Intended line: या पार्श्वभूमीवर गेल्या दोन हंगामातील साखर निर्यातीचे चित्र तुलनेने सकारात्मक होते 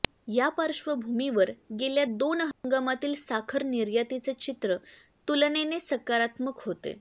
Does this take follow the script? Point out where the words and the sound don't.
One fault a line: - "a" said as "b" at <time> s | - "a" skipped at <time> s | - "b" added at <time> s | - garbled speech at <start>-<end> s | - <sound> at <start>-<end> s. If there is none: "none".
- dropout at 2.5-2.6 s